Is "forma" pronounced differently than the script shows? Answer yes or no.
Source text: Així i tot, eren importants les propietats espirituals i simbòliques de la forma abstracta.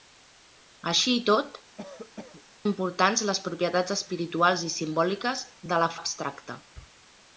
yes